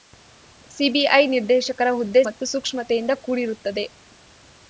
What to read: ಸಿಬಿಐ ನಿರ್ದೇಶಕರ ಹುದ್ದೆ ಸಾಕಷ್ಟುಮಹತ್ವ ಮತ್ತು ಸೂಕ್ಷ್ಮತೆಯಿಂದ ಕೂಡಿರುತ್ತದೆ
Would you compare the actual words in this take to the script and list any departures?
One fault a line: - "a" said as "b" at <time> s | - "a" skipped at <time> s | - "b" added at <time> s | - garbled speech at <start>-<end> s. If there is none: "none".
- "ಸಾಕಷ್ಟುಮಹತ್ವ" skipped at 2.2 s